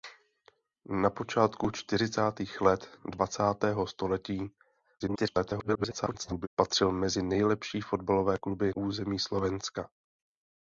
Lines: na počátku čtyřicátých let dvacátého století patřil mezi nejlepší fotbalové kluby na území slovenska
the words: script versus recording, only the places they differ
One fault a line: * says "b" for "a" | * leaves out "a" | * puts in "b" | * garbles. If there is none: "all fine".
* garbles
* leaves out "na"